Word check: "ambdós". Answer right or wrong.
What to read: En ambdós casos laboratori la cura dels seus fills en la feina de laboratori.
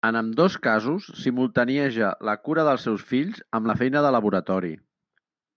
right